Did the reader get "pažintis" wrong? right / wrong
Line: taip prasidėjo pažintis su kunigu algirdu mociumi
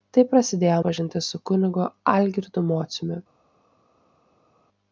right